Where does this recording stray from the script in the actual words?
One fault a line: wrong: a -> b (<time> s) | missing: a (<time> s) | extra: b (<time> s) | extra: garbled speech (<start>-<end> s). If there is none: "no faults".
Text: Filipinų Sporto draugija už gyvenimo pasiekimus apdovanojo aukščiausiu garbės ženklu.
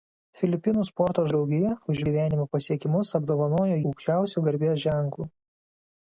no faults